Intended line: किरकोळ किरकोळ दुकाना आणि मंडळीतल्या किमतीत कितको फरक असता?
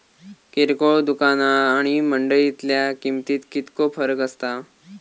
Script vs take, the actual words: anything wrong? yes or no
yes